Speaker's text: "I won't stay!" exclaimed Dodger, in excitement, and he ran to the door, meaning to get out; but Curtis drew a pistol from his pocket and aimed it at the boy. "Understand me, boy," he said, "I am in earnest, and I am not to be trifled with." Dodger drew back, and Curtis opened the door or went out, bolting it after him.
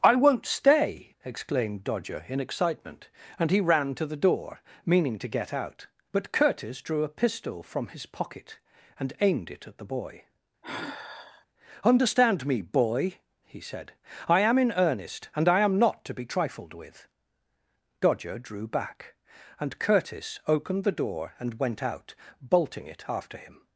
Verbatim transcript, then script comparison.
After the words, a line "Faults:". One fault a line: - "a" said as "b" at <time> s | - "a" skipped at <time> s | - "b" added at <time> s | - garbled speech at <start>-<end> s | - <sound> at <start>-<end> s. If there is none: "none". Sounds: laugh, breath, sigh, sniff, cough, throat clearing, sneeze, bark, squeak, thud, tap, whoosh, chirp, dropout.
"I won't stay!" exclaimed Dodger, in excitement, and he ran to the door, meaning to get out; but Curtis drew a pistol from his pocket and aimed it at the boy. "Understand me, boy," he said, "I am in earnest, and I am not to be trifled with." Dodger drew back, and Curtis opened the door and went out, bolting it after him.
Faults:
- sigh at 10.6-11.5 s
- "or" said as "and" at 21.4 s